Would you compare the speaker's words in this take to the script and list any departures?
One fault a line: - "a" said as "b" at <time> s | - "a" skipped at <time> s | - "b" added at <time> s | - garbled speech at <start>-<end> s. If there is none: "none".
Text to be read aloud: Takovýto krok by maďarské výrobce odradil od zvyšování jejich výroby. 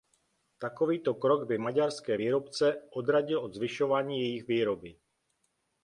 none